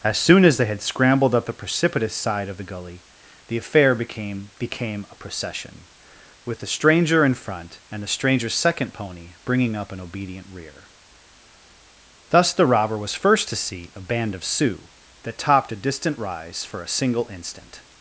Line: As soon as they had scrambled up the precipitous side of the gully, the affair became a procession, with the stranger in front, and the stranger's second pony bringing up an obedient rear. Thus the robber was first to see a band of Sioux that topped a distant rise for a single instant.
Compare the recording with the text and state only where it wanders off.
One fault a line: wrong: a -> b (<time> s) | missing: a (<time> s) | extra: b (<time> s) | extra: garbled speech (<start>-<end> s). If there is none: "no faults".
extra: became (4.6 s)